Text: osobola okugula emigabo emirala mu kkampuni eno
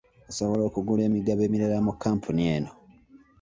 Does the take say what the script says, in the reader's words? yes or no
yes